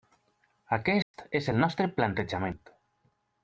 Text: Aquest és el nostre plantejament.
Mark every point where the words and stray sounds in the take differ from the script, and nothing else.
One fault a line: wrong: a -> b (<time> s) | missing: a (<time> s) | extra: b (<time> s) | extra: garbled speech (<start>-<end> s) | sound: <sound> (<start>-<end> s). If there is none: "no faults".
sound: dropout (1.0-1.1 s)